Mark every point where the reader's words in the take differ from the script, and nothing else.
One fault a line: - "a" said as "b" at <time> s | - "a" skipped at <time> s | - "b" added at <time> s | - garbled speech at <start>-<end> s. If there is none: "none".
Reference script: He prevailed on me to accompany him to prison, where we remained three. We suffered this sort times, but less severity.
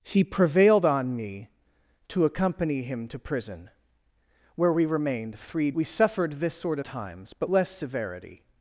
none